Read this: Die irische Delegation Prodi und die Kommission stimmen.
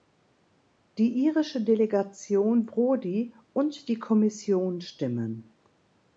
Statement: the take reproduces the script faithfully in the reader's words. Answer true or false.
true